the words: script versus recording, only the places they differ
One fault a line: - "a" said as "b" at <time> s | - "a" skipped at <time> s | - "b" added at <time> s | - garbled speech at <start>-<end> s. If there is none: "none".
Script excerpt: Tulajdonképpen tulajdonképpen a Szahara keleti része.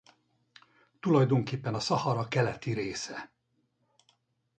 - "tulajdonképpen" skipped at 1.8 s